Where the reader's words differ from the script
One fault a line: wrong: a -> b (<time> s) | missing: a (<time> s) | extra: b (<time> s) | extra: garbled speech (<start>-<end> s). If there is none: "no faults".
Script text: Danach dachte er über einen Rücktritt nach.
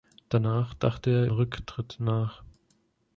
missing: über einen (1.3 s)